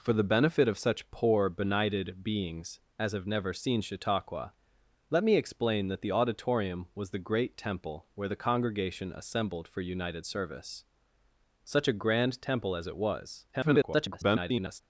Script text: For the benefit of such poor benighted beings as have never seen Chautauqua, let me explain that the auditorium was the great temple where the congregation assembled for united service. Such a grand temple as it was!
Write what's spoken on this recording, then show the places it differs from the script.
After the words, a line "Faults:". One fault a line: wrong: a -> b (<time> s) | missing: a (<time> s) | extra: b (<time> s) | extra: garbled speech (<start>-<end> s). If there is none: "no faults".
For the benefit of such poor benighted beings as have never seen Chautauqua, let me explain that the auditorium was the great temple where the congregation assembled for united service. Such a grand temple as it was! [garbled]
Faults:
extra: garbled speech (13.5-14.8 s)